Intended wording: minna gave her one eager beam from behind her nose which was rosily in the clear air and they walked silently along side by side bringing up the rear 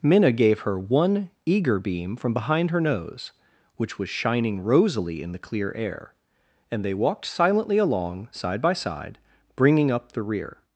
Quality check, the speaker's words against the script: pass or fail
fail